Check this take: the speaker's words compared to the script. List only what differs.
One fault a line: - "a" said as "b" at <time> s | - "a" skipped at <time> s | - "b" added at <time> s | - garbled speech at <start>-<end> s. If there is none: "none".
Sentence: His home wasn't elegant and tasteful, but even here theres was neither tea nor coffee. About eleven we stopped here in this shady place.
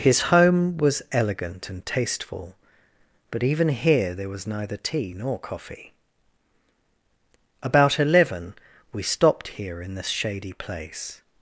- "wasn't" said as "was" at 0.8 s
- "theres" said as "there" at 4.1 s